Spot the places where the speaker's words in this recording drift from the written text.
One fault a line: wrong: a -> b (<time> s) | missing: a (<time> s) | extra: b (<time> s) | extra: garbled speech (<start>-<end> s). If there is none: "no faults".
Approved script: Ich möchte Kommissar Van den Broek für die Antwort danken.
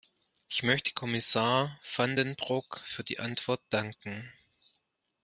no faults